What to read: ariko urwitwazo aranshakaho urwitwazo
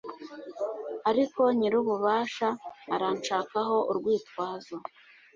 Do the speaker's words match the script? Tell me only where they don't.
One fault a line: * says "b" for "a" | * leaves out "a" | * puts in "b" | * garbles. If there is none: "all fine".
* says "nyir'ububasha" for "urwitwazo"